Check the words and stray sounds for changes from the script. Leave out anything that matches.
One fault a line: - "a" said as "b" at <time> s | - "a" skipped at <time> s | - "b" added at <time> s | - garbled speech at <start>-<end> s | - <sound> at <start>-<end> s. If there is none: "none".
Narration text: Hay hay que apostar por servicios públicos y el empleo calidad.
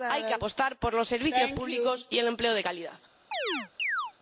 - "hay" skipped at 0.2 s
- "los" added at 0.9 s
- "de" added at 2.5 s
- chirp at 3.3-4.1 s